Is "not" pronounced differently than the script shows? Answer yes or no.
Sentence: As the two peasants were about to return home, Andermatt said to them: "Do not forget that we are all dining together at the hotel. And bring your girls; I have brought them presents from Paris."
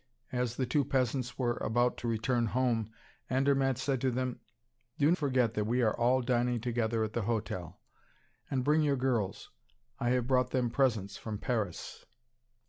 yes